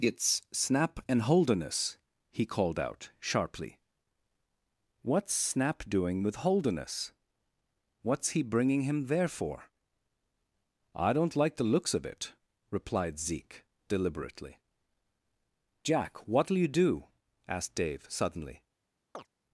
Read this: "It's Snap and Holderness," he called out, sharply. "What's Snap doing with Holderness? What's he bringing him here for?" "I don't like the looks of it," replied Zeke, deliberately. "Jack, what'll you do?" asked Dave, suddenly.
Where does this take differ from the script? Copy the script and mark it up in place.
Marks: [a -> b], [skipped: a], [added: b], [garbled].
"It's Snap and Holderness," he called out, sharply. "What's Snap doing with Holderness? What's he bringing him [here -> there] for?" "I don't like the looks of it," replied Zeke, deliberately. "Jack, what'll you do?" asked Dave, suddenly.